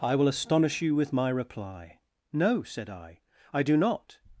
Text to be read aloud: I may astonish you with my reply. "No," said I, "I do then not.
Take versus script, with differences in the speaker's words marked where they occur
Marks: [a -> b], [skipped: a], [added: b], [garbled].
I [may -> will] astonish you with my reply. "No," said I, "I do [skipped: then] not.